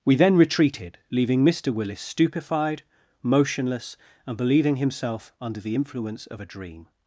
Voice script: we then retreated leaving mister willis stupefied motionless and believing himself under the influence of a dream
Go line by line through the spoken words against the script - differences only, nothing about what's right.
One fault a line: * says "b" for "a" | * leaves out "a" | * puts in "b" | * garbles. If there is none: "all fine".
all fine